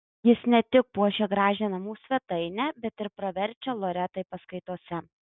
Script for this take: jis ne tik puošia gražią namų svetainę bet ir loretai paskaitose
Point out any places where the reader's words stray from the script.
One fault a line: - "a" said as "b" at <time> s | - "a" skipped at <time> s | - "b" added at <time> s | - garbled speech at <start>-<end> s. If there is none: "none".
- "praverčia" added at 3.2 s